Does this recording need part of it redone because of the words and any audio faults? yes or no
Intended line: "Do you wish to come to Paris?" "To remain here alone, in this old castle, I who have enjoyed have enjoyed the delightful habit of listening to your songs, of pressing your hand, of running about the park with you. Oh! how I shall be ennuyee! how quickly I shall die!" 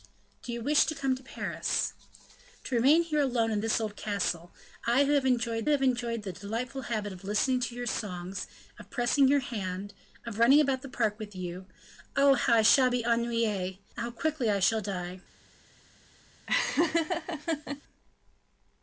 yes